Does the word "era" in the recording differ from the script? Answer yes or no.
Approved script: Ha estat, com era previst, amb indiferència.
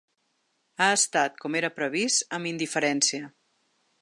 no